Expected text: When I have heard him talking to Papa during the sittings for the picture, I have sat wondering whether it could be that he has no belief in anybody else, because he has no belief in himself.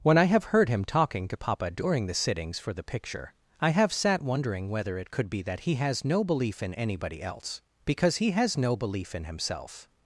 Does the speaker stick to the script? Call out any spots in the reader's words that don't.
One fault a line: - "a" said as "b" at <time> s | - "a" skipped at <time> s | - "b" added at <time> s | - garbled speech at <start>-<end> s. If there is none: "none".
none